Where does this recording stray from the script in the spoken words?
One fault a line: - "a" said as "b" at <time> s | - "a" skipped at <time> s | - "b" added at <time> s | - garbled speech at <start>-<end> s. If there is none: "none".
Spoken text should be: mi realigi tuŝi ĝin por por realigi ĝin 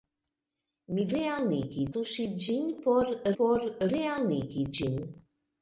none